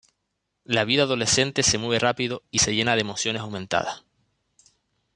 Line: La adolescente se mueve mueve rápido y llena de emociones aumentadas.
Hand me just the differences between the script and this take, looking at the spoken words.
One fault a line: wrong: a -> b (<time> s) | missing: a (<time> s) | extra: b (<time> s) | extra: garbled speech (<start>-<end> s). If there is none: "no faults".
extra: vida (0.8 s)
missing: mueve (2.0 s)
extra: se (2.6 s)